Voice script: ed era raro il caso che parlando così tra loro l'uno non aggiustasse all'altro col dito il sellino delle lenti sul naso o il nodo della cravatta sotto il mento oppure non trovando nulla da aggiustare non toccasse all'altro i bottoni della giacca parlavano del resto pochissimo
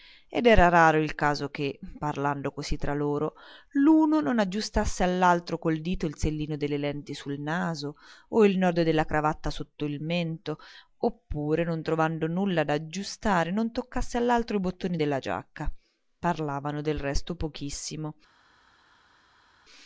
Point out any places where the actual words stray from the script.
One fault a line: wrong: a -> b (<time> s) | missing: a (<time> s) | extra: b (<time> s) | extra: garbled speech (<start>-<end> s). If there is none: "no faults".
no faults